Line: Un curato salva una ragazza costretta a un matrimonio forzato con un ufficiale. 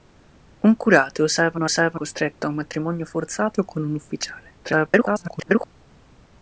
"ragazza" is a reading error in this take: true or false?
true